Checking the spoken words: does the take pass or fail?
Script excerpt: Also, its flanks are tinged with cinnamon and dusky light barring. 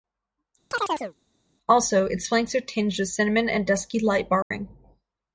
pass